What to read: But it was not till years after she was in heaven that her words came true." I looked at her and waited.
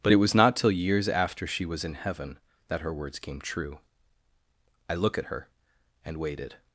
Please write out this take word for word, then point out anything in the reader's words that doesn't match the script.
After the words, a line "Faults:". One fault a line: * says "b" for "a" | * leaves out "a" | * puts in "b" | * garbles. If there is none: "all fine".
But it was not till years after she was in heaven that her words came true." I look at her and waited.
Faults:
* says "look" for "looked"